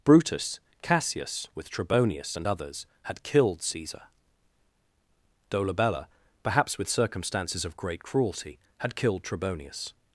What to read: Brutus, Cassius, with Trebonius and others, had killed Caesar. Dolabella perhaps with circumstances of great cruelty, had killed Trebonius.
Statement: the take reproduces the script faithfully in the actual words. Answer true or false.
true